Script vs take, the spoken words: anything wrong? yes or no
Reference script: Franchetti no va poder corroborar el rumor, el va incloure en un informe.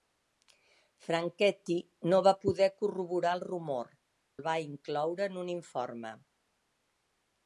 no